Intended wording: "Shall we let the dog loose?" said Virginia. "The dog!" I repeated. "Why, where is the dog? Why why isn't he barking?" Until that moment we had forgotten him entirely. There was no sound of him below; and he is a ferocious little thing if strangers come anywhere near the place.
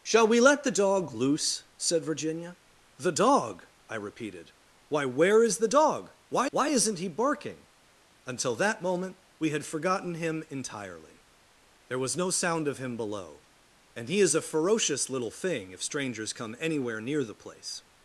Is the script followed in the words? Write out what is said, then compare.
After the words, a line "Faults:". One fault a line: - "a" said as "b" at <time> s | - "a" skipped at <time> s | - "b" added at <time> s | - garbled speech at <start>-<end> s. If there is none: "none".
"Shall we let the dog loose?" said Virginia. "The dog!" I repeated. "Why, where is the dog? Why why isn't he barking?" Until that moment we had forgotten him entirely. There was no sound of him below; and he is a ferocious little thing if strangers come anywhere near the place.
Faults:
none